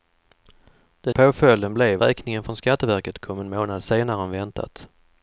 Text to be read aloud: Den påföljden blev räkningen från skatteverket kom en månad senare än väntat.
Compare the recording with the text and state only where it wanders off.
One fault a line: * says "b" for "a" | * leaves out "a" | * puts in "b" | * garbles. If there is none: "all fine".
all fine